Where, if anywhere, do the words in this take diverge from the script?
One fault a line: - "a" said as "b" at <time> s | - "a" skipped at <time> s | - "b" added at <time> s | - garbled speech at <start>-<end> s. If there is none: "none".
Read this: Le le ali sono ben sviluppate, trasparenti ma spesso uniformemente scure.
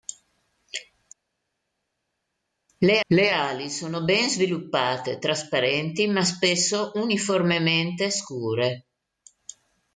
none